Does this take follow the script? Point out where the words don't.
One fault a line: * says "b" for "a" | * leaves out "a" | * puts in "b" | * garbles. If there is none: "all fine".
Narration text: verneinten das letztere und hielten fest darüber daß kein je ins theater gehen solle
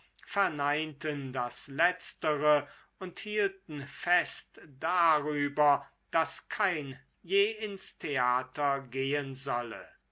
all fine